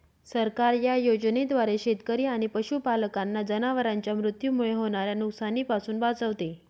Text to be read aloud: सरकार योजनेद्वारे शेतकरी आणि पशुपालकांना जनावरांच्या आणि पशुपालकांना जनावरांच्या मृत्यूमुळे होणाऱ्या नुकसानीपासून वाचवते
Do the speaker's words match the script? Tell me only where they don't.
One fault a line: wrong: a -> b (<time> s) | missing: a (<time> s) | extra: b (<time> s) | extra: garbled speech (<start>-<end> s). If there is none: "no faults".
extra: या (0.8 s)
missing: आणि पशुपालकांना जनावरांच्या (4.2 s)